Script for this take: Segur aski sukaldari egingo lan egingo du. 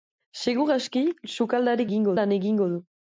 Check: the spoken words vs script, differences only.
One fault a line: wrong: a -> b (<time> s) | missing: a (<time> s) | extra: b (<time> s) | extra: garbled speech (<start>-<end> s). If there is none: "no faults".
no faults